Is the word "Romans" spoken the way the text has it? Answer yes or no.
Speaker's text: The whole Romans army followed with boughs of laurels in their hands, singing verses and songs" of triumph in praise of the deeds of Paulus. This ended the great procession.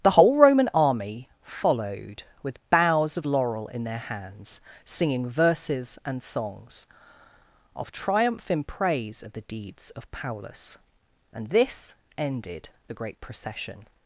no